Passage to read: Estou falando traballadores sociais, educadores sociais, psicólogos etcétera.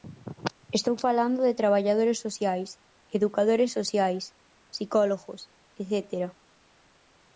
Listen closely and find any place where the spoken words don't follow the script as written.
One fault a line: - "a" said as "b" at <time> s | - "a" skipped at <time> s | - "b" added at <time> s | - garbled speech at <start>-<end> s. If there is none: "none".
- "de" added at 1.5 s